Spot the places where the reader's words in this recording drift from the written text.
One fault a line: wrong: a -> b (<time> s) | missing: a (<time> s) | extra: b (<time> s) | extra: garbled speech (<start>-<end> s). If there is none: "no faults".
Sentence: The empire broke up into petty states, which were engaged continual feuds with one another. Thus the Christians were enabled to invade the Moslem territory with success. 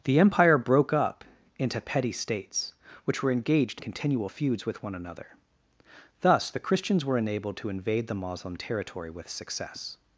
no faults